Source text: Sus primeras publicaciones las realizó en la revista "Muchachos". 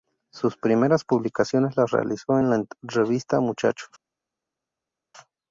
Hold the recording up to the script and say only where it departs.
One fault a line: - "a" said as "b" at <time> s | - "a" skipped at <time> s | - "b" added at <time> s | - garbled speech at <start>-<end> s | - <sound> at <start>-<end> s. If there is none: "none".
none